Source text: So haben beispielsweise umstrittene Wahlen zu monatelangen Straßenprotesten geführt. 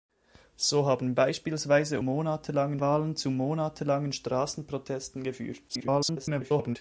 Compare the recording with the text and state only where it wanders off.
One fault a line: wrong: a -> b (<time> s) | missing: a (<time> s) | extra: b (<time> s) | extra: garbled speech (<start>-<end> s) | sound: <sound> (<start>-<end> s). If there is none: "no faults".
wrong: umstrittene -> monatelangen (2.0 s)
extra: garbled speech (5.7-6.8 s)